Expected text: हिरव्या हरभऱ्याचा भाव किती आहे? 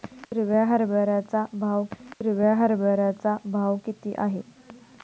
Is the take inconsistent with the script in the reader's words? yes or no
yes